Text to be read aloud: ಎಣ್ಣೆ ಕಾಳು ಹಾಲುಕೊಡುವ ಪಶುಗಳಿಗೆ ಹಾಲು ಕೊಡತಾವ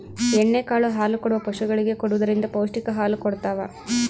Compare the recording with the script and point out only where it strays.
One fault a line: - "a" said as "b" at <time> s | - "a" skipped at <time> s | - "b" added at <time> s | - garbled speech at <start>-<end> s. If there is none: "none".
- "ಕೊಡುವುದರಿಂದ ಪೌಷ್ಟಿಕ" added at 1.9 s